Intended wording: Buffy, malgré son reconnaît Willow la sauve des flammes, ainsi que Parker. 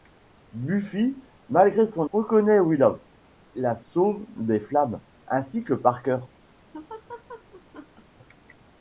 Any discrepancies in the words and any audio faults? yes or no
yes